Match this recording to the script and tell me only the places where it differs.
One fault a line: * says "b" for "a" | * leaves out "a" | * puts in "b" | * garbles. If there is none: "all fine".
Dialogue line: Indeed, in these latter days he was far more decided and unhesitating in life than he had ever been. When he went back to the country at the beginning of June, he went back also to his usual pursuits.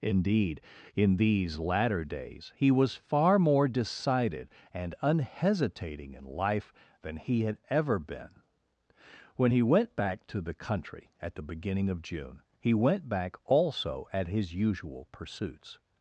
* says "at" for "to"